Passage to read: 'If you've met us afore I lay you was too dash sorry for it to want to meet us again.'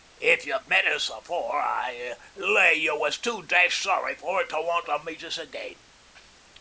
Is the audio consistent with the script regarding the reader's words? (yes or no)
yes